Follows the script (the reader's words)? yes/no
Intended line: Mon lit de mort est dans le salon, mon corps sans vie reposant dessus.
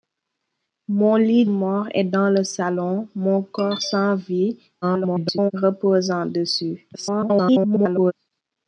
no